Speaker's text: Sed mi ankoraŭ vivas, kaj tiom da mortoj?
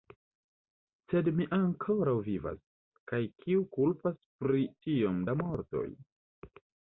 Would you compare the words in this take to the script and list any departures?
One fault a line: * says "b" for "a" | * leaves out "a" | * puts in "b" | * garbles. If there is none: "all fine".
* puts in "kiu kulpas pri"